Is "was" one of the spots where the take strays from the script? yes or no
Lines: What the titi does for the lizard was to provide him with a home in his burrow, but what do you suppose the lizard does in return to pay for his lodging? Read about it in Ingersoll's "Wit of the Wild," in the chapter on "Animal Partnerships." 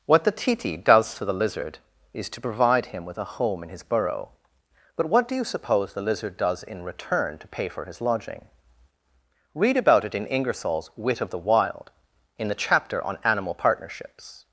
yes